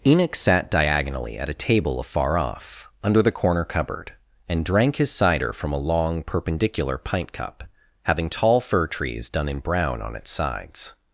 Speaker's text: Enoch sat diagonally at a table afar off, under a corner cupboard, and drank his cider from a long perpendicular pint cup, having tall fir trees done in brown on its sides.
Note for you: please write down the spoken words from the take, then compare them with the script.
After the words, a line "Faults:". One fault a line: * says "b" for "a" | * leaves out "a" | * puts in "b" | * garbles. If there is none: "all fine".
Enoch sat diagonally at a table afar off, under the corner cupboard, and drank his cider from a long perpendicular pint cup, having tall fir trees done in brown on its sides.
Faults:
* says "the" for "a"